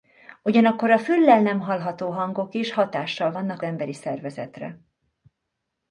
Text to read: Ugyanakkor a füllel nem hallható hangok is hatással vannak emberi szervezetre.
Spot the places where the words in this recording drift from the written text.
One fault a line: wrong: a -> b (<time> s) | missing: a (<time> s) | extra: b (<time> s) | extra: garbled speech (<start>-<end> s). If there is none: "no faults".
no faults